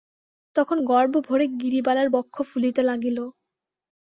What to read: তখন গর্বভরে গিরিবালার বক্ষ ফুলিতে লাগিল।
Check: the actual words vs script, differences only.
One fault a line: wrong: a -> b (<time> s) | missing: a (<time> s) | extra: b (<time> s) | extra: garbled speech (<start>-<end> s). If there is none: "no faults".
no faults